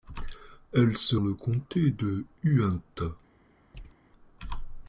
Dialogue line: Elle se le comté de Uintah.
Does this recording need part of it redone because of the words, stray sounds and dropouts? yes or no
yes